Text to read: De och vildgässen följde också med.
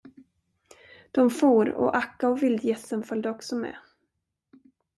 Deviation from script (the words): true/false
true